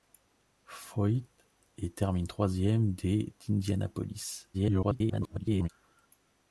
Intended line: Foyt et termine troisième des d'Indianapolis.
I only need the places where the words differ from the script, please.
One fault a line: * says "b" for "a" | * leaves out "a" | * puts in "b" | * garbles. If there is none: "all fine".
* garbles